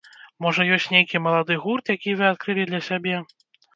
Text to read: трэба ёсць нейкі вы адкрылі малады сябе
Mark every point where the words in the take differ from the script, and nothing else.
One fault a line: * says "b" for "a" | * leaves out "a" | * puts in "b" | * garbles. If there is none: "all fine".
* says "можа" for "трэба"
* puts in "малады гурт які"
* says "для" for "малады"